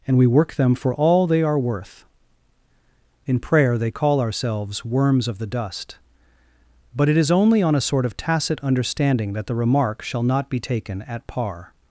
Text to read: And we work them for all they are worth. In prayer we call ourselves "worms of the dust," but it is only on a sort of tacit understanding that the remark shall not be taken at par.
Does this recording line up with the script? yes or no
no